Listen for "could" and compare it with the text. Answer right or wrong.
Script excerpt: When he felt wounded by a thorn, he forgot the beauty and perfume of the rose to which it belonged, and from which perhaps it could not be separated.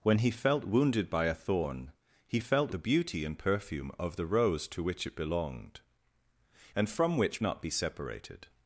wrong